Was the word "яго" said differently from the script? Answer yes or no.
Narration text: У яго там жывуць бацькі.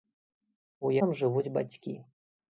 yes